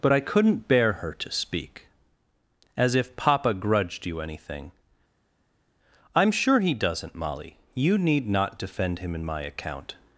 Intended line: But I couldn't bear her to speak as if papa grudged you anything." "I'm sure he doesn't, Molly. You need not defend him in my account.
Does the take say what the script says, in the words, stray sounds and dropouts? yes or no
yes